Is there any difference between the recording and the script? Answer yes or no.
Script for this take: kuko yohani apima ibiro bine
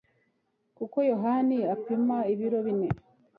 no